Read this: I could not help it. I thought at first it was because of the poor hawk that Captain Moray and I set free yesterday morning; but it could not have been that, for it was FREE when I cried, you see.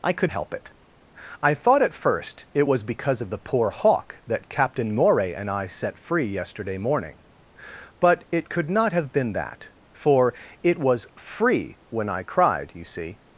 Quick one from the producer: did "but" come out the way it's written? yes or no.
yes